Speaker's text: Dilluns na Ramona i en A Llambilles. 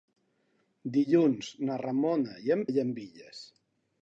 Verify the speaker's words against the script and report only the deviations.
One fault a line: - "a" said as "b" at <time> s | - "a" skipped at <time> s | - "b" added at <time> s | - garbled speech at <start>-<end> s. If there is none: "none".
none